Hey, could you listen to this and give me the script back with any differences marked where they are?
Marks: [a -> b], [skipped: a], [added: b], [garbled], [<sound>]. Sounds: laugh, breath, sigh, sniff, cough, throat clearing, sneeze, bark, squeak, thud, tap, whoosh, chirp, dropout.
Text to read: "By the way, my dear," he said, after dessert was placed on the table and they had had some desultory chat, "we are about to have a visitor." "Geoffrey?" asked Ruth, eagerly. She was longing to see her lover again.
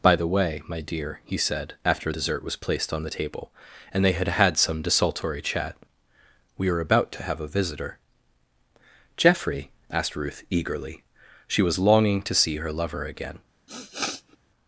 "By the way, my dear," he said, after dessert was placed on the table and they had had some desultory chat, "we are about to have a visitor." "Geoffrey?" asked Ruth, eagerly. She was longing to see her lover again. [sniff]